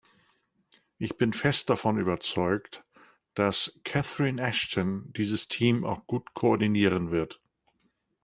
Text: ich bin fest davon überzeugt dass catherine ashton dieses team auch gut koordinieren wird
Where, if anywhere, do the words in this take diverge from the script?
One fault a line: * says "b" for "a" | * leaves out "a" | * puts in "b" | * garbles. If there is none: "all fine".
all fine